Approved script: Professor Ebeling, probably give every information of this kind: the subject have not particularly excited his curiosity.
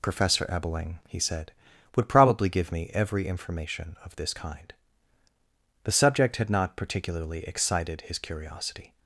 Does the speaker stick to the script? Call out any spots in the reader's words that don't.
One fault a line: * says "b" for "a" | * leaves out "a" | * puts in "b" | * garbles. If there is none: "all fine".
* puts in "he said would"
* puts in "me"
* says "had" for "have"